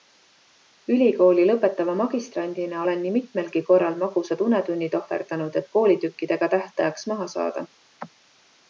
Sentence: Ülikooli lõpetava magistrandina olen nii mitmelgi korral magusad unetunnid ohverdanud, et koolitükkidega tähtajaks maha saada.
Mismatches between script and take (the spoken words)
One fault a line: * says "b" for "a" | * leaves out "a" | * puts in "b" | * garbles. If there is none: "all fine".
all fine